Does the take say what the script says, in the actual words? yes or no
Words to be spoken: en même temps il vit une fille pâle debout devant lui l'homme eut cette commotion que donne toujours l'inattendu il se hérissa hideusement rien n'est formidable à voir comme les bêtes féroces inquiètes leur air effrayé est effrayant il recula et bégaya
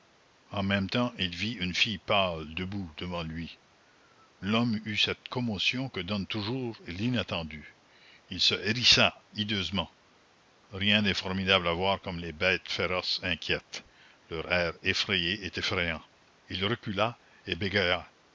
yes